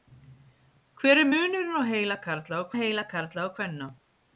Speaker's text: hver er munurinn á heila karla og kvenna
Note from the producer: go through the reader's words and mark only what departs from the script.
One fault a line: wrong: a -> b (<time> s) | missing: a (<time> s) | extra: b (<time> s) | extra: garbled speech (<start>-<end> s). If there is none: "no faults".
extra: heila karla og (2.8 s)